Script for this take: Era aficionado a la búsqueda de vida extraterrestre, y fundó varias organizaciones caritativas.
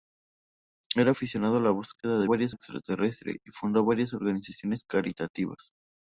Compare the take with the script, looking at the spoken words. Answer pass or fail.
fail